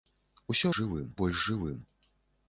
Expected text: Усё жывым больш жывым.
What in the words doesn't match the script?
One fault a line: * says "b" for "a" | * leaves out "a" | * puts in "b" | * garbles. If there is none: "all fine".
all fine